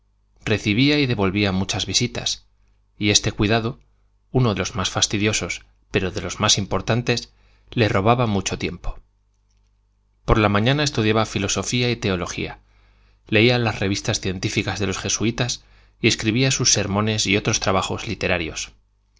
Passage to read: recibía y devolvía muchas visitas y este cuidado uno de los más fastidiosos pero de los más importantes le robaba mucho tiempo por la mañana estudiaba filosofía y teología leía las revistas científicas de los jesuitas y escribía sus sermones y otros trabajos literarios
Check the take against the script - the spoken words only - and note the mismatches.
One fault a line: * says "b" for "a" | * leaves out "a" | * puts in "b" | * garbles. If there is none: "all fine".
* leaves out "de"